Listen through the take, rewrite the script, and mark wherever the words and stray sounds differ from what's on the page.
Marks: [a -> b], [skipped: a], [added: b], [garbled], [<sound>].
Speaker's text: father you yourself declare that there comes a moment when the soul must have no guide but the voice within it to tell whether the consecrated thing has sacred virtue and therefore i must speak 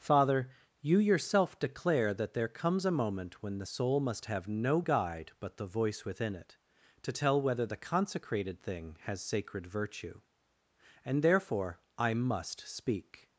father you yourself declare that there comes a moment when the soul must have no guide but the voice within it to tell whether the consecrated thing has sacred virtue and therefore i must speak